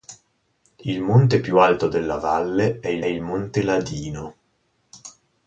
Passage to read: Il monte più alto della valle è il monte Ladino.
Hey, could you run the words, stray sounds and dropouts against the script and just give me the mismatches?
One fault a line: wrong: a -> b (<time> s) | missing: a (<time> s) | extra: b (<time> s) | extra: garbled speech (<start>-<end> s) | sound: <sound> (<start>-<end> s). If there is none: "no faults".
extra: il (3.0 s)